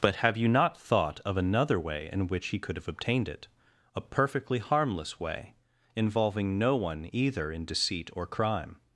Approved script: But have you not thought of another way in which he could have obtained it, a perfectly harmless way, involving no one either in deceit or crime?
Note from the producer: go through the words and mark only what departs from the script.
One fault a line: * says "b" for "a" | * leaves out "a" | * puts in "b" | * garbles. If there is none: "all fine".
all fine